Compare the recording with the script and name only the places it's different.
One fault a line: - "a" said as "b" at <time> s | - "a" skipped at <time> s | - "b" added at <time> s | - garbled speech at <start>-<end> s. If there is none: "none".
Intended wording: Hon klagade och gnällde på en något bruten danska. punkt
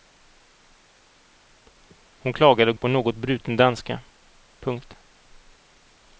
- "gnällde" skipped at 2.8 s